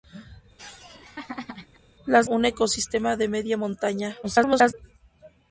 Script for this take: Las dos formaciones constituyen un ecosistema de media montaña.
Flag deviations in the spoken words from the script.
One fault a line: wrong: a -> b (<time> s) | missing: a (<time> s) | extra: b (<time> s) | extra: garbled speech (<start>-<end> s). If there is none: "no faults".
missing: dos formaciones constituyen (2.3 s)
extra: garbled speech (4.2-4.7 s)